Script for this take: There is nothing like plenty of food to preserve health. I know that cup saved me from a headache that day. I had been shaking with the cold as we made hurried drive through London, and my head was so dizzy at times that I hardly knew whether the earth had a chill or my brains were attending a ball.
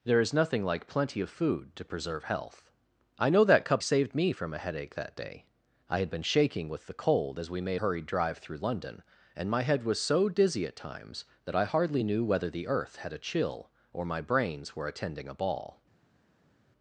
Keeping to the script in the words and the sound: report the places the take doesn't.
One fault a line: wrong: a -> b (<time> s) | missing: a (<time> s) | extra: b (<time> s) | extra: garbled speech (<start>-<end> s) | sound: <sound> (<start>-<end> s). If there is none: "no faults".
no faults